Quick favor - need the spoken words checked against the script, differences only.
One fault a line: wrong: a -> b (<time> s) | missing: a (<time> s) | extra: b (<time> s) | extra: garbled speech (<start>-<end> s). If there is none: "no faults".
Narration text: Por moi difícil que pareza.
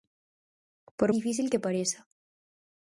missing: moi (1.1 s)